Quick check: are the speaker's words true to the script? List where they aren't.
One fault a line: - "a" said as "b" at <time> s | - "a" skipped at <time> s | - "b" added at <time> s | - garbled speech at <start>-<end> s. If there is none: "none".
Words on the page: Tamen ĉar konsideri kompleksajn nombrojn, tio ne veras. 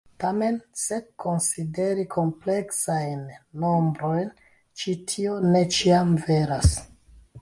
- "ĉar" said as "se" at 0.8 s
- "ĉi" added at 4.8 s
- "ĉiam" added at 5.8 s